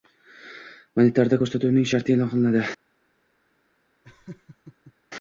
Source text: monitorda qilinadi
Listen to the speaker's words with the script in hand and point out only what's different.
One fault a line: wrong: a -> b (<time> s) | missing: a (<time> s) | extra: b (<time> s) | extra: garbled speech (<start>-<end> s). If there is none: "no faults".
extra: ko‘rsatuvning sharti e'lon (1.4 s)